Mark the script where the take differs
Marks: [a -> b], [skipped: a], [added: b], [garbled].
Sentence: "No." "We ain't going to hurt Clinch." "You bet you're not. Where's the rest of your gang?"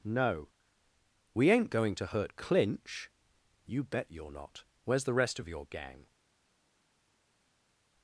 "No." "We ain't going to hurt Clinch." "You bet you're not. Where's the rest of your gang?"